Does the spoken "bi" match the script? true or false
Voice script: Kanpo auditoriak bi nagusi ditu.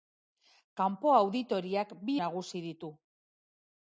true